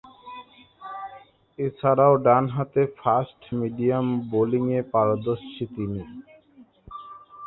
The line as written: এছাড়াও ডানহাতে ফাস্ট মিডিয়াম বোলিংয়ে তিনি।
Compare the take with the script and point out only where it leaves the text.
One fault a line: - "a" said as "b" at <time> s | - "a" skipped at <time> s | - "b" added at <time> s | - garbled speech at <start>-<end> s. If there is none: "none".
- "পারদর্শী" added at 4.9 s